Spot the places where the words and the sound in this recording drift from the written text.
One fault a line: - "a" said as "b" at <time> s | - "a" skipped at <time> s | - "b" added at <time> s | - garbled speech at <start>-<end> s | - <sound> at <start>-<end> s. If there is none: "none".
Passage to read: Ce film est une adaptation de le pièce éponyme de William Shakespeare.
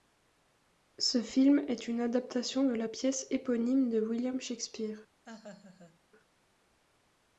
- "le" said as "la" at 2.7 s
- laugh at 5.3-6.0 s